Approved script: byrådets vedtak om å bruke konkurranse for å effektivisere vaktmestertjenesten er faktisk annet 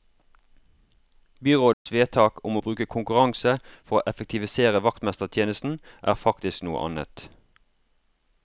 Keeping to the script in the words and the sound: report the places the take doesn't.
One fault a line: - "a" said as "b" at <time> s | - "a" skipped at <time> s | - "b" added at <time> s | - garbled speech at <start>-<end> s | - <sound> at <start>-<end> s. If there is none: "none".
- dropout at 1.7-1.9 s
- "noe" added at 6.7 s